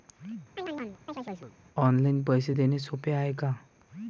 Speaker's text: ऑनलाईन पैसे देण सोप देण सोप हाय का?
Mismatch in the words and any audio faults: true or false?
true